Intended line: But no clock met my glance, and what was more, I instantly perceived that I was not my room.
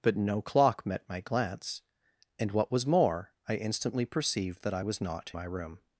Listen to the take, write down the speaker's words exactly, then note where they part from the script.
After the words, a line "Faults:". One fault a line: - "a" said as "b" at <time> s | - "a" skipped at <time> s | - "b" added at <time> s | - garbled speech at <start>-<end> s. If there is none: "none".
But no clock met my glance, and what was more, I instantly perceived that I was not my room.
Faults:
none